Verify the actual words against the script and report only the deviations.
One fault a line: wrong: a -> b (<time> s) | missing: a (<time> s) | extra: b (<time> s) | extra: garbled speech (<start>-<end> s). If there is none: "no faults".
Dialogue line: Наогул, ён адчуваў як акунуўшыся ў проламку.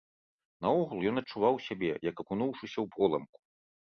extra: сябе (1.7 s)